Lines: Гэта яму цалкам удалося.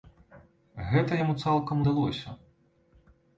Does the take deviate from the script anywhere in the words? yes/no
no